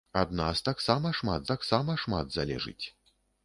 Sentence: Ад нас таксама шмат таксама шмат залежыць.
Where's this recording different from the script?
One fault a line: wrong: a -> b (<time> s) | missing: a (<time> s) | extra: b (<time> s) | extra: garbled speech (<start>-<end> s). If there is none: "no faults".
no faults